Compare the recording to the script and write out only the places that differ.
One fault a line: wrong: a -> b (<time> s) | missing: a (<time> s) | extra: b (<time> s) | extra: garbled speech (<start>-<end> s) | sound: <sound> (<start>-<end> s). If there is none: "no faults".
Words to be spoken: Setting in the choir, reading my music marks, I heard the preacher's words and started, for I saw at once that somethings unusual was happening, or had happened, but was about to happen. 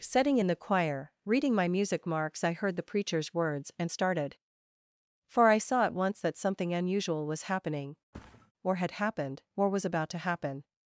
wrong: somethings -> something (6.4 s)
sound: thud (8.1-8.5 s)
wrong: but -> or (9.6 s)